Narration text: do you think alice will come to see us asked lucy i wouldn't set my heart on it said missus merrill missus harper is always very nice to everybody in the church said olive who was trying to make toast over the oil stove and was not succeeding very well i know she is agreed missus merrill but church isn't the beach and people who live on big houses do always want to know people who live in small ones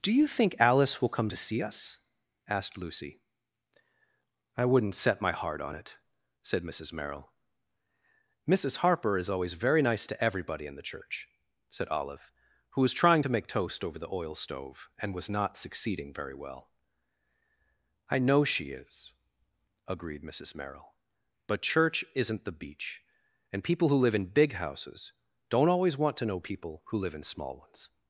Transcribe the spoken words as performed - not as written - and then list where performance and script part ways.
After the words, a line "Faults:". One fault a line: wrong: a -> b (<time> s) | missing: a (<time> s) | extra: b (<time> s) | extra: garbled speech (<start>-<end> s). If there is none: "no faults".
do you think alice will come to see us asked lucy i wouldn't set my heart on it said missus merrill missus harper is always very nice to everybody in the church said olive who was trying to make toast over the oil stove and was not succeeding very well i know she is agreed missus merrill but church isn't the beach and people who live in big houses don't always want to know people who live in small ones
Faults:
wrong: on -> in (24.1 s)
wrong: do -> don't (25.5 s)